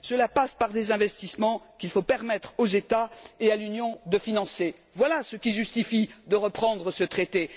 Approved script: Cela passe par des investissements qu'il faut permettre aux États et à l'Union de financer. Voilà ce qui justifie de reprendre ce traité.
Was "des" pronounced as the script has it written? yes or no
yes